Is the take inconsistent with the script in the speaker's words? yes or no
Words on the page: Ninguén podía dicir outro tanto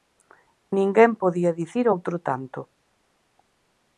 no